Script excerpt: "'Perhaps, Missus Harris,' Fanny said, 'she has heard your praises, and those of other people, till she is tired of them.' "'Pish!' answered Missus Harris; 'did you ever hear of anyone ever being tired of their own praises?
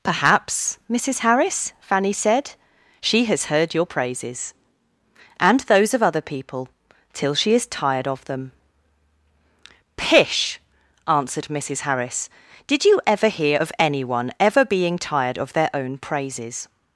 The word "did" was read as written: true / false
true